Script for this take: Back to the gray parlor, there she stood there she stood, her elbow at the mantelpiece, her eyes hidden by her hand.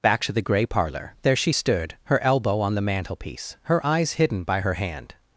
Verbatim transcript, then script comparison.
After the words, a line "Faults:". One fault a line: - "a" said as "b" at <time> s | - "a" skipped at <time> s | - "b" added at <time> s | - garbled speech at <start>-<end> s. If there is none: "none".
Back to the gray parlor, there she stood, her elbow on the mantelpiece, her eyes hidden by her hand.
Faults:
- "there she stood" skipped at 2.0 s
- "at" said as "on" at 2.6 s